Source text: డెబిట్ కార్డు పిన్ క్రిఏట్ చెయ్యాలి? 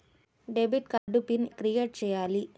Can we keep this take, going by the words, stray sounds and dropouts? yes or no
no